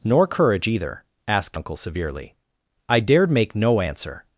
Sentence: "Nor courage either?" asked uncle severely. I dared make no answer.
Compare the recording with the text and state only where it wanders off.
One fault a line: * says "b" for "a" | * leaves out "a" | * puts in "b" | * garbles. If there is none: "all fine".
all fine